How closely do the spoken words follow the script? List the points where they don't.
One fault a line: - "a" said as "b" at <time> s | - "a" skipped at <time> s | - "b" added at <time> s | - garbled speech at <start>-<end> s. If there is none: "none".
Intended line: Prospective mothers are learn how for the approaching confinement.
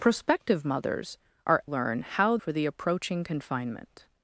none